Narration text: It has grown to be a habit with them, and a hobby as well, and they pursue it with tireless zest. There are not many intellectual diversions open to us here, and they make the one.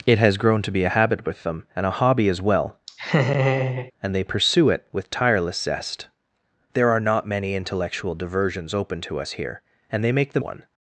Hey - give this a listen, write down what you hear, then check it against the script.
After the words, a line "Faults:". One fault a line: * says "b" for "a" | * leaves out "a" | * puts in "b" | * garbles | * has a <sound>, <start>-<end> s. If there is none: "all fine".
It has grown to be a habit with them, and a hobby as well, and they pursue it with tireless zest. There are not many intellectual diversions open to us here, and they make the one.
Faults:
* has a laugh, 2.9-3.9 s